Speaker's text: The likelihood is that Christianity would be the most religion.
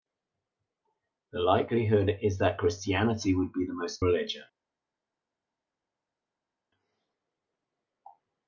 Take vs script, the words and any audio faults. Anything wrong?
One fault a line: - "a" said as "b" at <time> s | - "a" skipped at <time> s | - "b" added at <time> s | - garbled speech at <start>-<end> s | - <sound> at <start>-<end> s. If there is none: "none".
none